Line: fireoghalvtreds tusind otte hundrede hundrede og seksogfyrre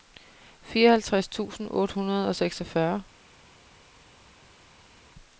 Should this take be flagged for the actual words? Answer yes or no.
yes